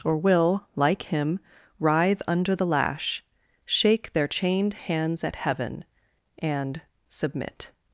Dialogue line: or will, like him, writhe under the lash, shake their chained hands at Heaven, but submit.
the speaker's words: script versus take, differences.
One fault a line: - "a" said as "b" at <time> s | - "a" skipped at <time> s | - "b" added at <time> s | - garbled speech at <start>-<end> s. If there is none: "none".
- "but" said as "and" at 6.4 s